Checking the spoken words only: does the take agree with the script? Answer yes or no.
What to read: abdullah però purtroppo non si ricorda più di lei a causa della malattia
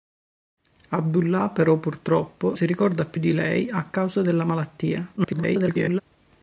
no